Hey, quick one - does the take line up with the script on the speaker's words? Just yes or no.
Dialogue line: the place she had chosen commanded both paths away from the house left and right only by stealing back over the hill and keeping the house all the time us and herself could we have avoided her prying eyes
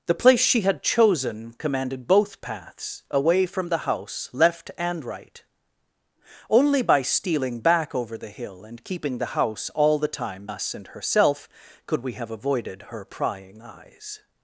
yes